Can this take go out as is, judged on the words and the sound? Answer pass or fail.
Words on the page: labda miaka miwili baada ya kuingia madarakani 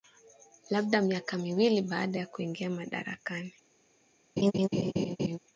fail